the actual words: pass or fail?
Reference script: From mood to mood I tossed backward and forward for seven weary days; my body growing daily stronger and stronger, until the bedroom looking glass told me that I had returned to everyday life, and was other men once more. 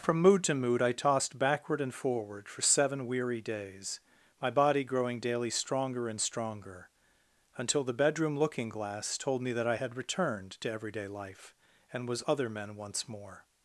pass